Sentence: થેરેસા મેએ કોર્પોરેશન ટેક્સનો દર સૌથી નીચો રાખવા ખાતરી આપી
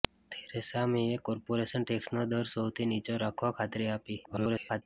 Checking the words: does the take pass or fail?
fail